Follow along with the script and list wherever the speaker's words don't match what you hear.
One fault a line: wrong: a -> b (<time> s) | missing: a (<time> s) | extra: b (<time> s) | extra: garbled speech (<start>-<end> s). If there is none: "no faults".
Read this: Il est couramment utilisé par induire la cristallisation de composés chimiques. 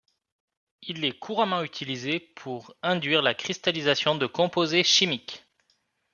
wrong: par -> pour (2.2 s)